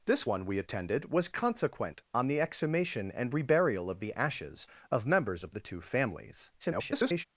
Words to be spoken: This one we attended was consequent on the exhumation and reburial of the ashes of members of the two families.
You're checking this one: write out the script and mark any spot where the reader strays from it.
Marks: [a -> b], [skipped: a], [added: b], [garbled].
This one we attended was consequent on the exhumation and reburial of the ashes of members of the two families. [garbled]